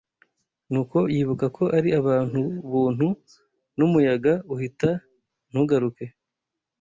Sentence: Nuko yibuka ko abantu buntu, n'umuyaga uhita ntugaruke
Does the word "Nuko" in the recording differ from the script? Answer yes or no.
no